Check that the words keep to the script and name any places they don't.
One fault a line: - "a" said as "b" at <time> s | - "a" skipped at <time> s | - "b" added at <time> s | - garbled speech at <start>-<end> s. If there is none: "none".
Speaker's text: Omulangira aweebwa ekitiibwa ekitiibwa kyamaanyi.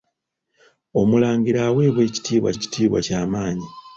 none